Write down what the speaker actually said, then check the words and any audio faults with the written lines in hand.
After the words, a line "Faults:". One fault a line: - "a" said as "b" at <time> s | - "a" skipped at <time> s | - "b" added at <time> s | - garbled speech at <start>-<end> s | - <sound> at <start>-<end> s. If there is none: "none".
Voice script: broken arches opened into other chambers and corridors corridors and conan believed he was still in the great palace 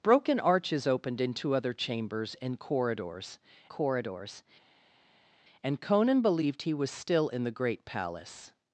broken arches opened into other chambers and corridors corridors and conan believed he was still in the great palace
Faults:
none